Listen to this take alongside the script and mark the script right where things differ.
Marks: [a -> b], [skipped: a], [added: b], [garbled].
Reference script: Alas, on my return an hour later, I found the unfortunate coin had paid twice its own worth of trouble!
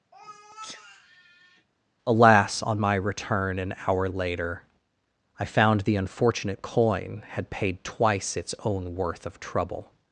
Alas, on my return an hour later, I found the unfortunate coin had paid twice its own worth of trouble!